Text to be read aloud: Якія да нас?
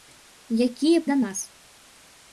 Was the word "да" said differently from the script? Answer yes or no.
no